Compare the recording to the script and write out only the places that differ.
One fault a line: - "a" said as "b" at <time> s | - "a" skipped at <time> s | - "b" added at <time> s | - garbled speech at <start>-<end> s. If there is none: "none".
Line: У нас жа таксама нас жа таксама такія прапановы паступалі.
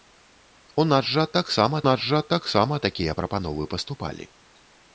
none